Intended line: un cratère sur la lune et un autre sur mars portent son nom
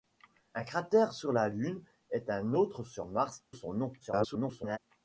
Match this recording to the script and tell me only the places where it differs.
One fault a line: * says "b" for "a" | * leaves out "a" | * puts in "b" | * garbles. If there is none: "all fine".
* leaves out "portent"
* garbles